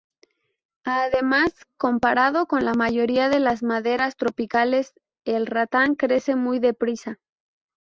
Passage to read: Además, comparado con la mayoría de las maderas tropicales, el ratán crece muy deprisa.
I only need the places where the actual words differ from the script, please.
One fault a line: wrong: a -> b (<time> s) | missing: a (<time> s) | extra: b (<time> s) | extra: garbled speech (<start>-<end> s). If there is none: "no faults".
no faults